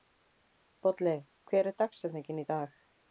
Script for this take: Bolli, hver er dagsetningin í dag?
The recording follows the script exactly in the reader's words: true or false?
true